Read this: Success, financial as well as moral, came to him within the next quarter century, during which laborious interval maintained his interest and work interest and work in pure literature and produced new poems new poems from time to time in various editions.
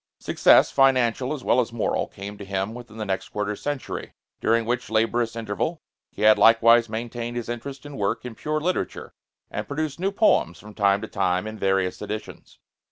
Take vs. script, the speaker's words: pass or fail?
fail